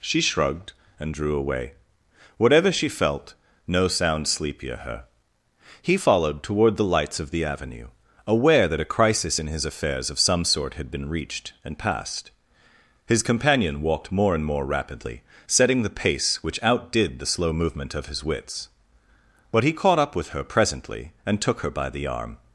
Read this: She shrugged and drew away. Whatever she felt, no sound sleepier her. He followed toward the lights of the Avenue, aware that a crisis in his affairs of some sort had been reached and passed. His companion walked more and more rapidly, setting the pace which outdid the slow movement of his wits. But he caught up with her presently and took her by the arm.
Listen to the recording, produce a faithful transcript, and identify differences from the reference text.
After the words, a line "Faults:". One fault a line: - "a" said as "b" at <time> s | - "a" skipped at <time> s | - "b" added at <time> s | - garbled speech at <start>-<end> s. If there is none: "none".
She shrugged and drew away. Whatever she felt, no sound sleepier her. He followed toward the lights of the Avenue, aware that a crisis in his affairs of some sort had been reached and passed. His companion walked more and more rapidly, setting the pace which outdid the slow movement of his wits. But he caught up with her presently and took her by the arm.
Faults:
none